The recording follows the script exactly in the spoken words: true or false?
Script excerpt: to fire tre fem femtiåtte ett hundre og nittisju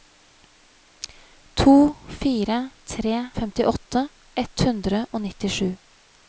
false